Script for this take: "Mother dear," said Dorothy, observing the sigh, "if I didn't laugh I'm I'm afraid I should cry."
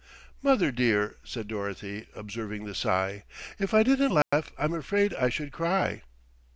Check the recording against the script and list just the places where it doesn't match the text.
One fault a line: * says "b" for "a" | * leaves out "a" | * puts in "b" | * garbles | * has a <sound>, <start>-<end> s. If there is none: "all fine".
* has a dropout, 4.2-4.3 s
* leaves out "I'm"